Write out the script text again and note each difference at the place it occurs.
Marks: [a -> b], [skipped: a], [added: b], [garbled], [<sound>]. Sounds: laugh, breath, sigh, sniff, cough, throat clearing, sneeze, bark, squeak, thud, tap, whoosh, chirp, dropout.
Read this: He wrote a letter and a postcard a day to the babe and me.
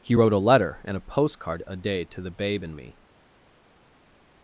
He wrote a letter and a postcard a day to the babe and me.